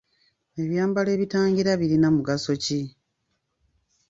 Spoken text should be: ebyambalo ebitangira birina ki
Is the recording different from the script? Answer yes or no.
yes